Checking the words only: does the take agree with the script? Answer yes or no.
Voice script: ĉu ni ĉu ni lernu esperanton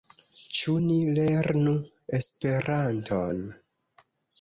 no